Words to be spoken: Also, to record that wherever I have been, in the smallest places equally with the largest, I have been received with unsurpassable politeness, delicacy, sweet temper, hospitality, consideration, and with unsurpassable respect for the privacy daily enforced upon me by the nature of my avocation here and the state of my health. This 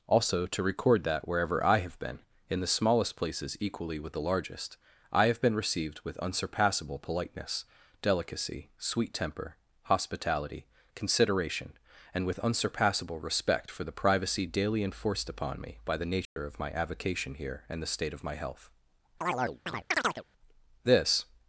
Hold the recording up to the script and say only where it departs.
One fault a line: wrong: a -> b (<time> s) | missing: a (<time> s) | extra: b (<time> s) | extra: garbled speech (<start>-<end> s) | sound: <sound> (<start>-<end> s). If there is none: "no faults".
sound: dropout (16.2-16.4 s)
sound: chirp (19.2-20.2 s)